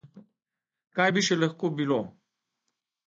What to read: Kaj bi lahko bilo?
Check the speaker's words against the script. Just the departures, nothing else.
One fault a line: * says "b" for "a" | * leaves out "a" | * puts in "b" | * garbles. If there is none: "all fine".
* puts in "še"